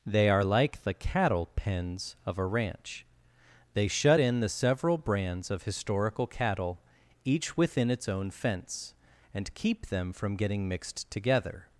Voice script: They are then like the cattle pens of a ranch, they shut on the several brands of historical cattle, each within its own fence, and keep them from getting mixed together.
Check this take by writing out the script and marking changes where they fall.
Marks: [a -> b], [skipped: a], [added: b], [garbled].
They are [skipped: then] like the cattle pens of a ranch, they shut [on -> in] the several brands of historical cattle, each within its own fence, and keep them from getting mixed together.